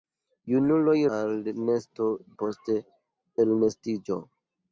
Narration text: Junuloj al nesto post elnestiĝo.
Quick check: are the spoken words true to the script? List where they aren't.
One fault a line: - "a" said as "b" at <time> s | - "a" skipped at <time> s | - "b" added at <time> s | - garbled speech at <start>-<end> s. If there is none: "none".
none